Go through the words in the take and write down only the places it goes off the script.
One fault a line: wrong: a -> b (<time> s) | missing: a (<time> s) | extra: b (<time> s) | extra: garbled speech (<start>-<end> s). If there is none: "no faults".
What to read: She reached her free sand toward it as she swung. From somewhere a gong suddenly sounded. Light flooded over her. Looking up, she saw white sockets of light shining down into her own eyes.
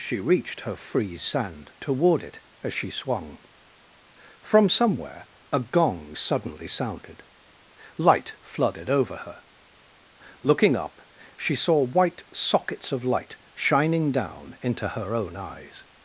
no faults